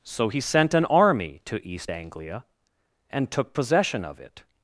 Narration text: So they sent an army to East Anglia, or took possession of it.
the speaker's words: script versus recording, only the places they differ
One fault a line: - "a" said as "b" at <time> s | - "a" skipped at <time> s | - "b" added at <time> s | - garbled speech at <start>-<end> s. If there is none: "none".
- "they" said as "he" at 0.3 s
- "or" said as "and" at 3.1 s